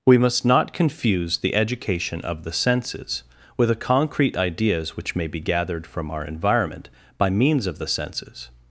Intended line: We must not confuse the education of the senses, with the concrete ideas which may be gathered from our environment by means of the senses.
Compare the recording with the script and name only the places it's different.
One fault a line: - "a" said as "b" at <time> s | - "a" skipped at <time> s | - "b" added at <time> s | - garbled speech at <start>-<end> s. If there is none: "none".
none